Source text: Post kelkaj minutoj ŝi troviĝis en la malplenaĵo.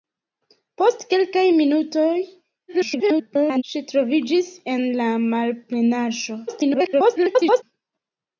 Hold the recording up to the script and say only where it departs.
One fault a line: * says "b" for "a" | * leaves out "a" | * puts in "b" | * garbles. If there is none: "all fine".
* garbles
* garbles